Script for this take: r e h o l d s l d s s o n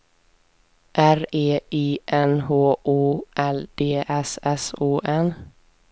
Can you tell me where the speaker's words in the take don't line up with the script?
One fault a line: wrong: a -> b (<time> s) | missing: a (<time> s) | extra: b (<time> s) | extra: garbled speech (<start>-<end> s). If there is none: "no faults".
extra: i n (1.7 s)
missing: l d s (4.4 s)